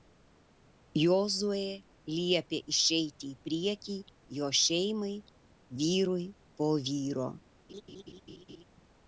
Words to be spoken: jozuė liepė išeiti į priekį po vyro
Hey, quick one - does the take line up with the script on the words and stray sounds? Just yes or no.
no